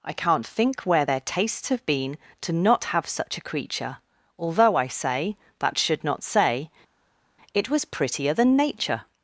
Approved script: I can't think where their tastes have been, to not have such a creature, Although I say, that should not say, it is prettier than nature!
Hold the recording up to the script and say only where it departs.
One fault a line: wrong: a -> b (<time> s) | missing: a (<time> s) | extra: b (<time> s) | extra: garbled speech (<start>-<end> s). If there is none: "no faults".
wrong: is -> was (7.7 s)